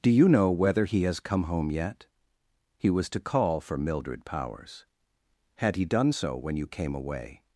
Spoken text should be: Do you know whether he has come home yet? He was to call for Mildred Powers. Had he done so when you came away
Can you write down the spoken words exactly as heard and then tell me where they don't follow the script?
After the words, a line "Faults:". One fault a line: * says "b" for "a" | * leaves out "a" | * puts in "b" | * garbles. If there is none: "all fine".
Do you know whether he has come home yet? He was to call for Mildred Powers. Had he done so when you came away
Faults:
all fine